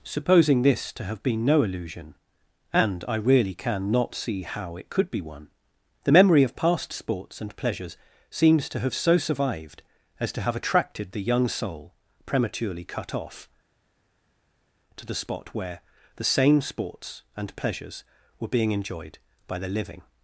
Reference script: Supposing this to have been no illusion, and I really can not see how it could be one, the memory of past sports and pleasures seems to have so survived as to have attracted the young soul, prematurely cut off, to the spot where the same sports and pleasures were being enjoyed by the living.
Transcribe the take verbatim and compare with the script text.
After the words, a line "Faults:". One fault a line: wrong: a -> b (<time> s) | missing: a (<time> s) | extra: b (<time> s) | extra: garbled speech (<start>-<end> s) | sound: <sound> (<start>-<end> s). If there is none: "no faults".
Supposing this to have been no illusion, and I really can not see how it could be one, the memory of past sports and pleasures seems to have so survived as to have attracted the young soul, prematurely cut off, to the spot where the same sports and pleasures were being enjoyed by the living.
Faults:
no faults